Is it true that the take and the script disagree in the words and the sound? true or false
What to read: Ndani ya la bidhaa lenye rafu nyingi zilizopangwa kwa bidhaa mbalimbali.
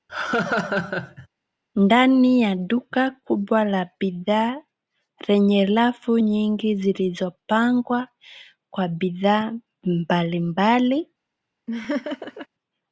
true